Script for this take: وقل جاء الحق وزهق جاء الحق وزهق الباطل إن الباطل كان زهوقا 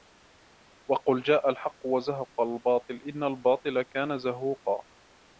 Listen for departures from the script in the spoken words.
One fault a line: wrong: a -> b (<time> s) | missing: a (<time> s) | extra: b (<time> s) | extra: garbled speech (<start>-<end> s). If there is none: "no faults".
missing: جاء الحق وزهق (2.4 s)